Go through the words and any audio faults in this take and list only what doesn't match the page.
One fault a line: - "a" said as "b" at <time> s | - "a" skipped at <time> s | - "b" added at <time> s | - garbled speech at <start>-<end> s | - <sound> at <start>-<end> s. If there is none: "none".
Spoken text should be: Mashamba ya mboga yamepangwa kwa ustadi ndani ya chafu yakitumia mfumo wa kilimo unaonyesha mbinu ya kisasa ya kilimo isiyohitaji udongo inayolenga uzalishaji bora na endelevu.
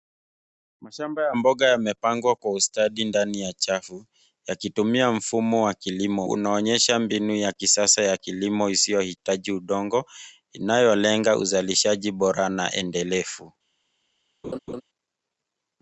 - laugh at 14.4-14.8 s